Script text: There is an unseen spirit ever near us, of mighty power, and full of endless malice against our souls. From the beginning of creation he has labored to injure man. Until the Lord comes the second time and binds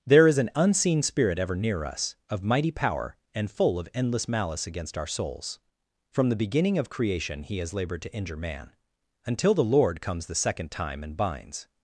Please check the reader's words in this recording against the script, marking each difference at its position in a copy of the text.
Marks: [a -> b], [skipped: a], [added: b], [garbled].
There is an unseen spirit ever near us, of mighty power, and full of endless malice against our souls. From the beginning of creation he has labored to injure man. Until the Lord comes the second time and binds